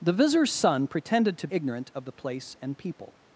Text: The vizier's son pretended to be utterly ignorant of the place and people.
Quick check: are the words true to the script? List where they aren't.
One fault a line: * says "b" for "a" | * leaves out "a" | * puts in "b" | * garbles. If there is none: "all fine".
* leaves out "be utterly"